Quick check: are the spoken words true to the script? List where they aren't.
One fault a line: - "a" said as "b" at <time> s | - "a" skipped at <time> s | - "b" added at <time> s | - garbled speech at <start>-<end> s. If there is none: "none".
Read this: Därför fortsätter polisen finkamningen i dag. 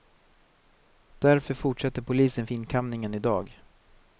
none